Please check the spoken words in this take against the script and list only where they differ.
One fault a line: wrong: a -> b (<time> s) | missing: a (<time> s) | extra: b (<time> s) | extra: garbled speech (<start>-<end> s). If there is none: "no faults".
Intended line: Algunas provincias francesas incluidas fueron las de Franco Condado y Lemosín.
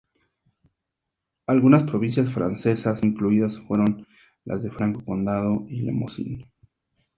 no faults